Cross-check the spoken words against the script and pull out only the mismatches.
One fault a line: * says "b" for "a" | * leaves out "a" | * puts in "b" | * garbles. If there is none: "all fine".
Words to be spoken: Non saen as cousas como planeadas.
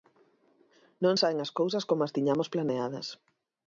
* puts in "as tiñamos"